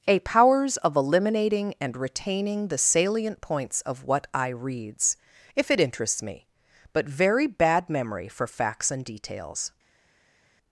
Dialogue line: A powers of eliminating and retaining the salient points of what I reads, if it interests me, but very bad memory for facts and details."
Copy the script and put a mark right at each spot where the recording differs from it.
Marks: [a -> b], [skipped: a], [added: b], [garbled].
A powers of eliminating and retaining the salient points of what I reads, if it interests me, but very bad memory for facts and details."